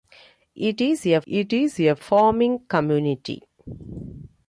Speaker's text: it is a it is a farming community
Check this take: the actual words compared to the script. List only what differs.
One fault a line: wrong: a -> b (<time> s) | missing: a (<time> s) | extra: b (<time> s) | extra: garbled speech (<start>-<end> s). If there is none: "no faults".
no faults